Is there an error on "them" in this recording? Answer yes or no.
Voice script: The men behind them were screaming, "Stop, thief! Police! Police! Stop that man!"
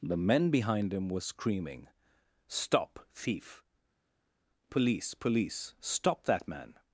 yes